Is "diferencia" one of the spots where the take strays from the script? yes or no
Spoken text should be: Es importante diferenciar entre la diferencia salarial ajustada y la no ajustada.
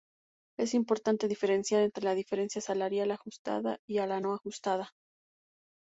no